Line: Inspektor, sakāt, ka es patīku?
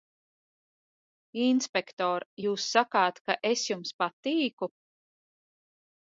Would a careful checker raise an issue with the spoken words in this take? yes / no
yes